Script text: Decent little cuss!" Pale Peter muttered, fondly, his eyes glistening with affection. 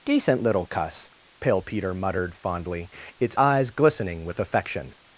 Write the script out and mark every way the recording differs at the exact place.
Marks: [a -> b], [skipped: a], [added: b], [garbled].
Decent little cuss!" Pale Peter muttered, fondly, [his -> its] eyes glistening with affection.